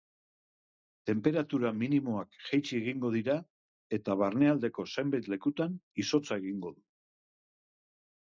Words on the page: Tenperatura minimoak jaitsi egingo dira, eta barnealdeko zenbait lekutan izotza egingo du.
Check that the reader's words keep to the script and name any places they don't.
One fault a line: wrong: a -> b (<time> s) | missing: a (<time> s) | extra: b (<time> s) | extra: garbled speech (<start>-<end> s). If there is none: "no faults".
no faults